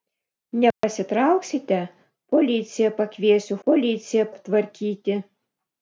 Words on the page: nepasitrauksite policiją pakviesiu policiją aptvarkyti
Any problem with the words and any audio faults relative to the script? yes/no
yes